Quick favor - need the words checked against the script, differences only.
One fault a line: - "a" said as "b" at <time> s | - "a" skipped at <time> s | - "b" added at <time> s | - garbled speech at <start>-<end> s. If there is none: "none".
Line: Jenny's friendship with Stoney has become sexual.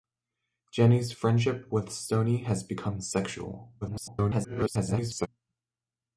- garbled speech at 3.8-5.3 s